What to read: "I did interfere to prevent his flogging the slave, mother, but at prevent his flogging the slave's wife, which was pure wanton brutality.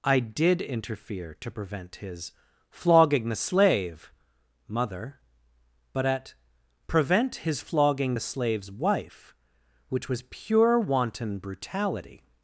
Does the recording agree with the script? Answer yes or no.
yes